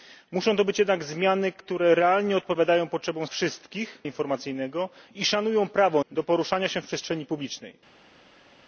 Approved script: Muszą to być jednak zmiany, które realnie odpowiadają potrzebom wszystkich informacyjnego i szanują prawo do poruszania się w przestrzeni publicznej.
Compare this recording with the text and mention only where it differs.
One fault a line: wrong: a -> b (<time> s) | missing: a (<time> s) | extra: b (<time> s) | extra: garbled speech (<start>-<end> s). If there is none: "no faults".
no faults